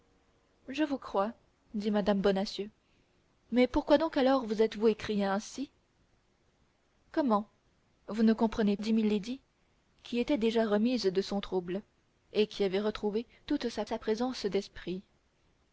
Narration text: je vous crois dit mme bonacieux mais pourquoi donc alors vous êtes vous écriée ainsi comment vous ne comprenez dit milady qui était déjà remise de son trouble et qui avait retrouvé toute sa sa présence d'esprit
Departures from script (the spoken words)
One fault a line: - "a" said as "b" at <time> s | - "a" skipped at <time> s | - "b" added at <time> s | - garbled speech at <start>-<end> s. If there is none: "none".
none